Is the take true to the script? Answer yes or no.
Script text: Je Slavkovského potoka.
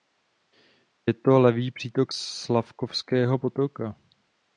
no